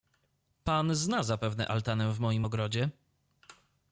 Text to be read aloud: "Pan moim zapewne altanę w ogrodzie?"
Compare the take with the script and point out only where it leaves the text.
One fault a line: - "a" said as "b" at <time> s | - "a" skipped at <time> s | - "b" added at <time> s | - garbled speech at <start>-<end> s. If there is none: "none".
- "moim" said as "zna" at 0.9 s
- "moim" added at 2.2 s